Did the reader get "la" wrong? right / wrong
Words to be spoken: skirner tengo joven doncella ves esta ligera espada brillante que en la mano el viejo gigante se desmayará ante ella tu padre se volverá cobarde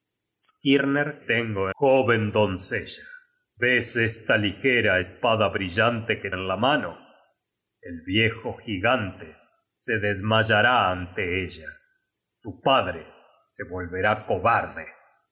right